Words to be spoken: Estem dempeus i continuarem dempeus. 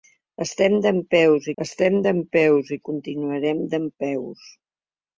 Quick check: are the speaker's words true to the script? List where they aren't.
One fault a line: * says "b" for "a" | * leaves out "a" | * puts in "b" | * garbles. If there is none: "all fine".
* puts in "estem dempeus"